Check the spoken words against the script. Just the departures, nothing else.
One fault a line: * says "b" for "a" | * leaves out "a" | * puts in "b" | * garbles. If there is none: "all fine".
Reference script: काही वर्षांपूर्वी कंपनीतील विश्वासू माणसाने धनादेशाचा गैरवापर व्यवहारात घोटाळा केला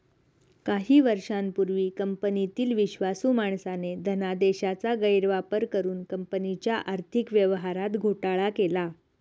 * puts in "करुन कंपनीच्या आर्थिक"